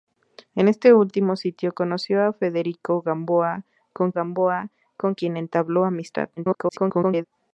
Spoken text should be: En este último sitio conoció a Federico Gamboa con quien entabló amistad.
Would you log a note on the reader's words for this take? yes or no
yes